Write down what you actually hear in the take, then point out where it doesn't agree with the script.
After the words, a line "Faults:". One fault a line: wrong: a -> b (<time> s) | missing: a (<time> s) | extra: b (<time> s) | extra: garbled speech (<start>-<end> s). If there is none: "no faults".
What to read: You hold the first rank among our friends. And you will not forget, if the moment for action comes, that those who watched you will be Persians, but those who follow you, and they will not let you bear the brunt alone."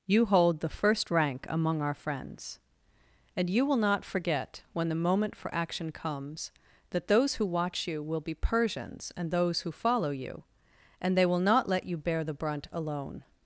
You hold the first rank among our friends. And you will not forget, when the moment for action comes, that those who watch you will be Persians, and those who follow you, and they will not let you bear the brunt alone."
Faults:
wrong: if -> when (4.7 s)
wrong: watched -> watch (7.5 s)
wrong: but -> and (9.2 s)